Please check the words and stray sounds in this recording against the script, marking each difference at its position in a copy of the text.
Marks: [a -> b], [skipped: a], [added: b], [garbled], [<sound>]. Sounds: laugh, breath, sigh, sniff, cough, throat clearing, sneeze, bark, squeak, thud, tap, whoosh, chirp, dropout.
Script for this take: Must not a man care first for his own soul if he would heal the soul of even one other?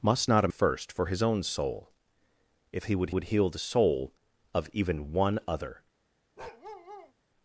Must not a [skipped: man care] first for his own soul if he would [added: would] heal the soul of even one other? [bark]